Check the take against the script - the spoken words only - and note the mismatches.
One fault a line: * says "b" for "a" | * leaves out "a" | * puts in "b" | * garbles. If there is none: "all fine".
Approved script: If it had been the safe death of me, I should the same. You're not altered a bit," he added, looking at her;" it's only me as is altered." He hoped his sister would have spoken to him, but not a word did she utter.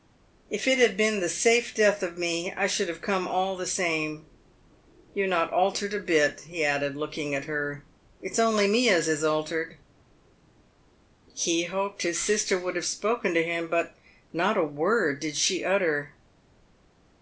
* puts in "have come all"